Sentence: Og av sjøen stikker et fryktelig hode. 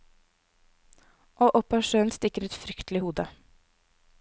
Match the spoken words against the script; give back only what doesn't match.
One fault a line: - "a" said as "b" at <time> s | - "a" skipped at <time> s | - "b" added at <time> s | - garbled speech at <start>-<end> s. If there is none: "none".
- "opp" added at 1.6 s